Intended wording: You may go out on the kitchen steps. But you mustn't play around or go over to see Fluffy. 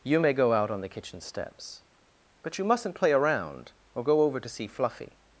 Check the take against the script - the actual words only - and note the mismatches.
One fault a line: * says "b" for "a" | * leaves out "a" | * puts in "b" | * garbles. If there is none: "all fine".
all fine